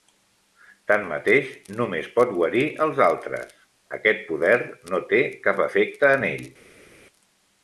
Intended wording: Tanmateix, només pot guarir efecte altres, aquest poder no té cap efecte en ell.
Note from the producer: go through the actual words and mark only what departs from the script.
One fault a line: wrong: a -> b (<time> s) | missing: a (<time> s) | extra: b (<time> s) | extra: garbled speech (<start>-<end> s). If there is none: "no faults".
wrong: efecte -> els (2.9 s)